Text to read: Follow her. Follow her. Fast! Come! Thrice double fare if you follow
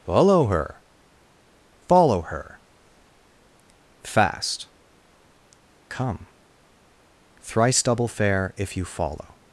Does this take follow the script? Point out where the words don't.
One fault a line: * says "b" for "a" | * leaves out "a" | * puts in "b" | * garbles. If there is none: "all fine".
all fine